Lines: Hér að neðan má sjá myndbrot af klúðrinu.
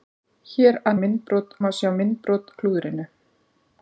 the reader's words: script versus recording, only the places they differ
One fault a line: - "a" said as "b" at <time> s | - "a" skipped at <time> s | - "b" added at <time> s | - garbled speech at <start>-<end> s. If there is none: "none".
- "neðan" said as "myndbrot" at 1.0 s
- "af" skipped at 2.5 s